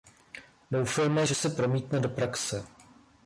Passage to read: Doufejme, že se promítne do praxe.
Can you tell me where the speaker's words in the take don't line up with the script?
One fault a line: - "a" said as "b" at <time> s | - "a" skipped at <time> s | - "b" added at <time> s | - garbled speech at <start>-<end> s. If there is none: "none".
none